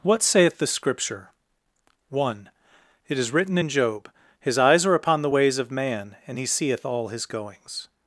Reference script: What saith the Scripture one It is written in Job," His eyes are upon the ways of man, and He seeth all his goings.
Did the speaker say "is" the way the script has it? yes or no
yes